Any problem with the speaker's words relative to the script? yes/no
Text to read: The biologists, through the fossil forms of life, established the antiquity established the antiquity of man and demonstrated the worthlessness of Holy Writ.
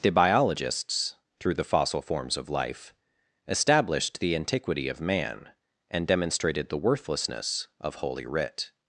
yes